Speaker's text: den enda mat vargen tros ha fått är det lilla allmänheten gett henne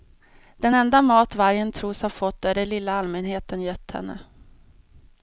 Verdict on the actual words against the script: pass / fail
pass